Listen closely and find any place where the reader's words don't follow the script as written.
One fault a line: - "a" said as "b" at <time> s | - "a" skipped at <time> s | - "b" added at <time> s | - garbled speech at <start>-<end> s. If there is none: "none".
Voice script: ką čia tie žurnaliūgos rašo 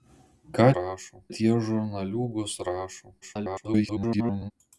- "čia" said as "rašo" at 0.8 s
- garbled speech at 3.2-4.5 s